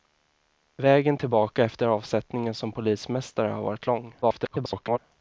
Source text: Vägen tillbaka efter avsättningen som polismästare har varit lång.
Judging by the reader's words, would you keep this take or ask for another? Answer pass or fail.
fail